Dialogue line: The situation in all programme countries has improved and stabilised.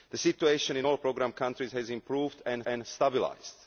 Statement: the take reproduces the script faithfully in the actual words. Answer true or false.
false